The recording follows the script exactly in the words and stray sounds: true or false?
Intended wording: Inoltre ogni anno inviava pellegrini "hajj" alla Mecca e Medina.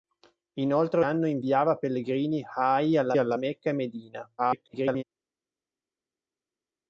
false